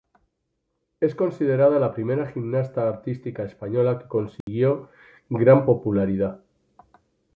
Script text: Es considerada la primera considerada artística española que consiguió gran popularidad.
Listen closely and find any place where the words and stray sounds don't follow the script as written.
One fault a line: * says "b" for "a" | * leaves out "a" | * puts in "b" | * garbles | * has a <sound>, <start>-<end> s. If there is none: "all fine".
* says "gimnasta" for "considerada"
* has a dropout, 4.4-4.5 s